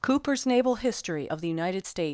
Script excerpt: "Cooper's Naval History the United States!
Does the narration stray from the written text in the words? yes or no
yes